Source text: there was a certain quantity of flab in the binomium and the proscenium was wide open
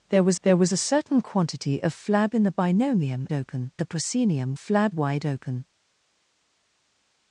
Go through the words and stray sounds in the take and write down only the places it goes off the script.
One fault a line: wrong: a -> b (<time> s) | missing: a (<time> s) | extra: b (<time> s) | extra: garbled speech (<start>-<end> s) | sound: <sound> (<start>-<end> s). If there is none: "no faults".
extra: there was (0.4 s)
wrong: and -> open (3.3 s)
wrong: was -> flab (4.5 s)